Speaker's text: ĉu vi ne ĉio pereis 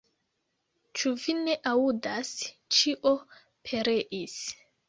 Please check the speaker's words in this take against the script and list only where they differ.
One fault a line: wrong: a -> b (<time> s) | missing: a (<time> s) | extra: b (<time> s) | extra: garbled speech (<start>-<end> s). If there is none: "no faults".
extra: aŭdas (1.7 s)